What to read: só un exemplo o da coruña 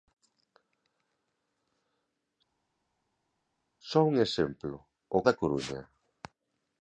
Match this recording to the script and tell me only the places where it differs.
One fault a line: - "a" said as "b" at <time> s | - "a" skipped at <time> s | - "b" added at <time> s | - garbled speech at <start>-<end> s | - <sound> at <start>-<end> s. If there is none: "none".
none